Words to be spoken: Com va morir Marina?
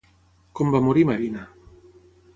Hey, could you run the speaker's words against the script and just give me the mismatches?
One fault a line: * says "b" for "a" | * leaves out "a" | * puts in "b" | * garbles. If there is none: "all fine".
all fine